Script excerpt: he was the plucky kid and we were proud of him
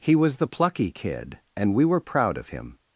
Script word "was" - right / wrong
right